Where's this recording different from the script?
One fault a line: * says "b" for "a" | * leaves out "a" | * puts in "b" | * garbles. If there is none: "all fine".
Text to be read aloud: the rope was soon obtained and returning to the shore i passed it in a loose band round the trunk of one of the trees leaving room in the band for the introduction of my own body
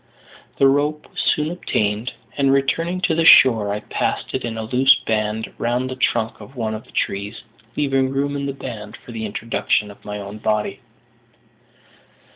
all fine